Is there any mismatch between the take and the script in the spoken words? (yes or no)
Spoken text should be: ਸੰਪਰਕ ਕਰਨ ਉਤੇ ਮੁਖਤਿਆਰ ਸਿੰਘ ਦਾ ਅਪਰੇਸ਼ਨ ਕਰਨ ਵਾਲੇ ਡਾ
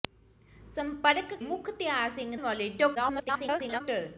yes